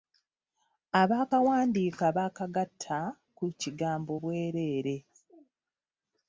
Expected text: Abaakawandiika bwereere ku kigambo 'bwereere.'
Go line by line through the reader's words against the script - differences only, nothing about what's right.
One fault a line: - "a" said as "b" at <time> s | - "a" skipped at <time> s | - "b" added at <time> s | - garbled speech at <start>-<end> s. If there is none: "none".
- "bwereere" said as "baakagatta" at 2.2 s